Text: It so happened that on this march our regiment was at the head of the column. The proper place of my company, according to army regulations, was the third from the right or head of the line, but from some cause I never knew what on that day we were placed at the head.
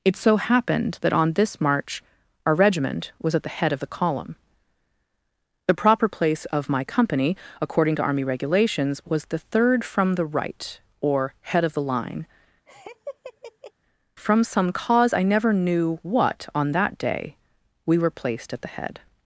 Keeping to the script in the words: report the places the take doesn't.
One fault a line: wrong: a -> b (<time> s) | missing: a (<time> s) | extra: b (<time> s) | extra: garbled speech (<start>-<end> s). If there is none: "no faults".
missing: but (12.2 s)